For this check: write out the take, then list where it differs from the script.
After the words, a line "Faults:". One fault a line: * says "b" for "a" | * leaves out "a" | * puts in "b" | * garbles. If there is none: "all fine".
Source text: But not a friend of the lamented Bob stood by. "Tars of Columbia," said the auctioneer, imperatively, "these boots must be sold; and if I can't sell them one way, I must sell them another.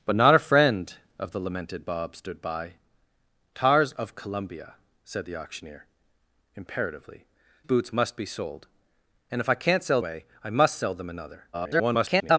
But not a friend of the lamented Bob stood by. "Tars of Columbia," said the auctioneer, imperatively, "boots must be sold; and if I can't sell way, I must sell them another. [garbled]
Faults:
* leaves out "these"
* leaves out "them one"
* garbles